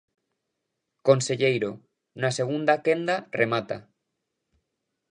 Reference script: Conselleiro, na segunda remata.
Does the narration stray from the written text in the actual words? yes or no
yes